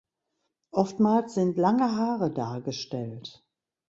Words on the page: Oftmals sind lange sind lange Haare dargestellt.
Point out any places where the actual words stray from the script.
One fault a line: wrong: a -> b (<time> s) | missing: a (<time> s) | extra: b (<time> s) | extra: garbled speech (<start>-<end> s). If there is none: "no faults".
missing: sind lange (1.9 s)